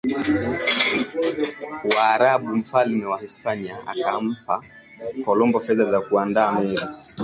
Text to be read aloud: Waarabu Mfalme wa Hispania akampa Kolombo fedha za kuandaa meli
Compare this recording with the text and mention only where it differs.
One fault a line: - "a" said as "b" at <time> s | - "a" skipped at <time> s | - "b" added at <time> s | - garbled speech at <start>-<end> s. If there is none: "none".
none